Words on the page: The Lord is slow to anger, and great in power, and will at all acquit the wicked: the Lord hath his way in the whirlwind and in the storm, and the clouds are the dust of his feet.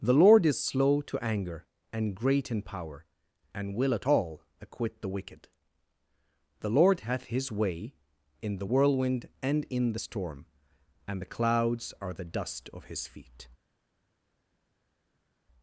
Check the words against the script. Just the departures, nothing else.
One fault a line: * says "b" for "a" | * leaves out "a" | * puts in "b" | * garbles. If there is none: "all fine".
all fine